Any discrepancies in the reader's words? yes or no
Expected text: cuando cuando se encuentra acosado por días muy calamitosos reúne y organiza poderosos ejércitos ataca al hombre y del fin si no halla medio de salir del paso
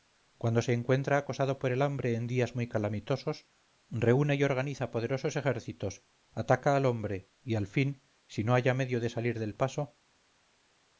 yes